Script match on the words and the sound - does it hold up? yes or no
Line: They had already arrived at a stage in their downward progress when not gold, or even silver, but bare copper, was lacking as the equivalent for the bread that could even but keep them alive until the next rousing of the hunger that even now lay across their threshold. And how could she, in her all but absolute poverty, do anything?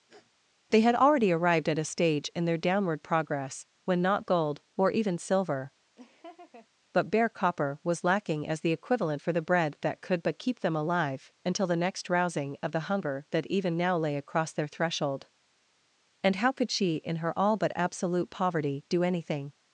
no